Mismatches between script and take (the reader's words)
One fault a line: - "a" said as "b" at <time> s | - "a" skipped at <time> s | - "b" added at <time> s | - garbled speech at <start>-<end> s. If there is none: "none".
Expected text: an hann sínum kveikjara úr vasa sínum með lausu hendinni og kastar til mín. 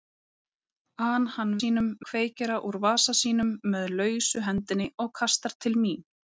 none